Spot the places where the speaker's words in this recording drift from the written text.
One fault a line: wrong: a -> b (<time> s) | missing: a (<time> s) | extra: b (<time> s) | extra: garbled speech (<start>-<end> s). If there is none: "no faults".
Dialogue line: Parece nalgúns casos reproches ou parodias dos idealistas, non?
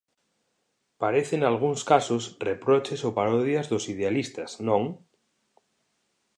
no faults